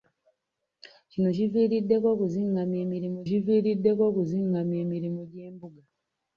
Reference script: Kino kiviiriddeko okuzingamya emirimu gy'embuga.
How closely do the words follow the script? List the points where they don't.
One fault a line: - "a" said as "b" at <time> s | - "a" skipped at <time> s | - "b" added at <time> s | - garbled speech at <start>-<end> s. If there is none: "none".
- "kiviiriddeko okuzingamya emirimu" added at 3.3 s